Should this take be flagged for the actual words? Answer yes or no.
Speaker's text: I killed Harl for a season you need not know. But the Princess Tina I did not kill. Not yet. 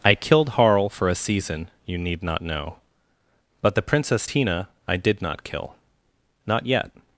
no